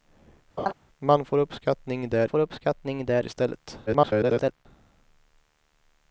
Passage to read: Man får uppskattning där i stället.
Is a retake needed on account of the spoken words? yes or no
yes